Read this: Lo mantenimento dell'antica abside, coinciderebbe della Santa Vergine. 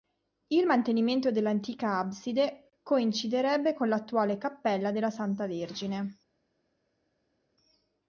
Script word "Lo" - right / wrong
wrong